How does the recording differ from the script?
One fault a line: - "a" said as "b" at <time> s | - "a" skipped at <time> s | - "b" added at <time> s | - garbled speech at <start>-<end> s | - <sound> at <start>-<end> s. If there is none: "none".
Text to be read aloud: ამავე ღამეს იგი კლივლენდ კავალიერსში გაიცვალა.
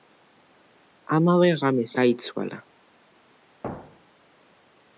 - "იგი კლივლენდ კავალიერსში" skipped at 1.9 s
- thud at 3.6-4.3 s